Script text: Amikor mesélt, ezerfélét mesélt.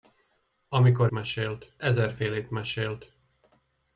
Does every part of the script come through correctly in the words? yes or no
yes